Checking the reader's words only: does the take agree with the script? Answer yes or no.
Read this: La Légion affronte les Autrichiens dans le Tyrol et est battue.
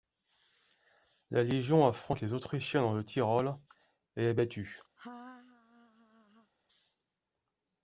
yes